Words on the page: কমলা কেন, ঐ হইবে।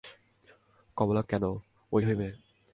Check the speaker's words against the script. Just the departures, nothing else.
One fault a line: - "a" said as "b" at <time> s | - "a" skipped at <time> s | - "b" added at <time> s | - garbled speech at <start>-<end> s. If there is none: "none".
none